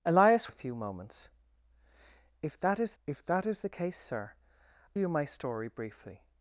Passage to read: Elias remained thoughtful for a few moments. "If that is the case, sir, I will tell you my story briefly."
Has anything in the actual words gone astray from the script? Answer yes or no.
yes